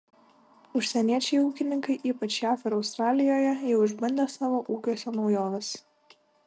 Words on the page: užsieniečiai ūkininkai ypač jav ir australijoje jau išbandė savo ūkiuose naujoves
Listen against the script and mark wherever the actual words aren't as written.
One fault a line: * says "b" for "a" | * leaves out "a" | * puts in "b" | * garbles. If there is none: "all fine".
all fine